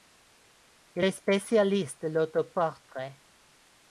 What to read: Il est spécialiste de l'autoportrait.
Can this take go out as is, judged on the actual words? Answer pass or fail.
pass